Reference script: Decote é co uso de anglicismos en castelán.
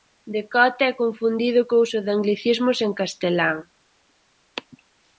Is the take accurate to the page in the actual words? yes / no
no